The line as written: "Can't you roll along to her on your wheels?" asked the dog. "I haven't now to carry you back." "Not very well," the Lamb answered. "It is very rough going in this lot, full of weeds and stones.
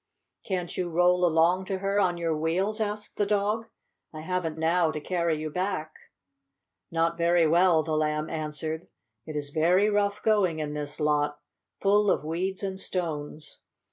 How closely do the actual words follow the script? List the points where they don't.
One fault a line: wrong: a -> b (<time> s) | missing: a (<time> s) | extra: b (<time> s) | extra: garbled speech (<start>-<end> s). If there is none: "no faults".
no faults